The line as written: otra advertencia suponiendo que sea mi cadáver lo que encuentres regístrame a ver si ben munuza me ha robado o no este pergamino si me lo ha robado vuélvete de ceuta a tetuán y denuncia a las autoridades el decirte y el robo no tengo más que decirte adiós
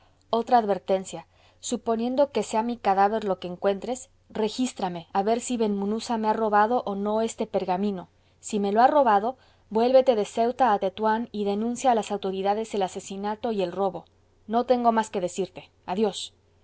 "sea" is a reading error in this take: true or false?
false